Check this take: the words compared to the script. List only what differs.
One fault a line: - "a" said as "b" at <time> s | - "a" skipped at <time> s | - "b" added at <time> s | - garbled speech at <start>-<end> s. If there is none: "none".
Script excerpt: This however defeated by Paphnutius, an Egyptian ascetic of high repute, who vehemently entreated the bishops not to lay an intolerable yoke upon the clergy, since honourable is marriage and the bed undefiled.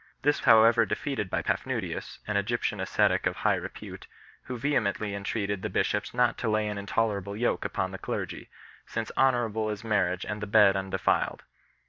none